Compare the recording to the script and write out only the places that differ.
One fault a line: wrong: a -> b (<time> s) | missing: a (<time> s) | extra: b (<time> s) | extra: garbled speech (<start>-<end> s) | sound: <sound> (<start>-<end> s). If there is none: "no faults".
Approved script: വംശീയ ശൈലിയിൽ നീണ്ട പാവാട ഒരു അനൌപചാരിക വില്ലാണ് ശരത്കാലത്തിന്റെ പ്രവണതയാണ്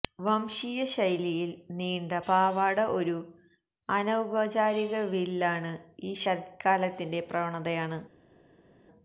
extra: ഈ (6.0 s)